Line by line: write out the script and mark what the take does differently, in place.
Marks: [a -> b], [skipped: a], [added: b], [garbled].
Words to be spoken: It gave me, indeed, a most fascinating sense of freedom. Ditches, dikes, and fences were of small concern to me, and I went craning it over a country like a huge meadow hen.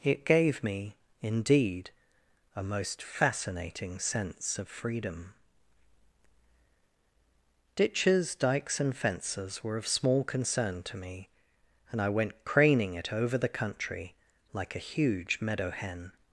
It gave me, indeed, a most fascinating sense of freedom. Ditches, dikes, and fences were of small concern to me, and I went craning it over [a -> the] country like a huge meadow hen.